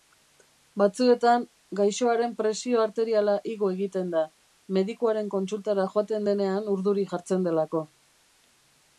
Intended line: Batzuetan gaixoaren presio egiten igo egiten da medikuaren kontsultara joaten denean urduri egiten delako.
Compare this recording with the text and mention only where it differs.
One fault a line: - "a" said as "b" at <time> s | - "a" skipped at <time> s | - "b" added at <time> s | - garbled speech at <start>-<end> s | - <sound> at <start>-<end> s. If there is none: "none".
- "egiten" said as "arteriala" at 2.9 s
- "egiten" said as "jartzen" at 7.1 s